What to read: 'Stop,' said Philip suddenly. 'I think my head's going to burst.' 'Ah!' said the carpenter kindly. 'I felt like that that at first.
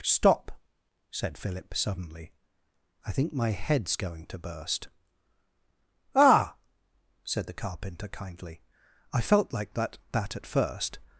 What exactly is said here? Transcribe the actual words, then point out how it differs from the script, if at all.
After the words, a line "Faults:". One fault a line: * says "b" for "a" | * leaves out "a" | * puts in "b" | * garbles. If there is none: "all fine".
'Stop,' said Philip suddenly. 'I think my head's going to burst.' 'Ah!' said the carpenter kindly. 'I felt like that that at first.
Faults:
all fine